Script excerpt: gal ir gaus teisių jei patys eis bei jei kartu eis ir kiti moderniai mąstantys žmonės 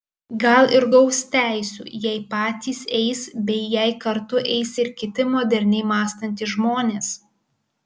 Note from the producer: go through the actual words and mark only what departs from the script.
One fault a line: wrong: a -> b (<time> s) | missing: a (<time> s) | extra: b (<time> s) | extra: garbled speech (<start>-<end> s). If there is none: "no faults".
no faults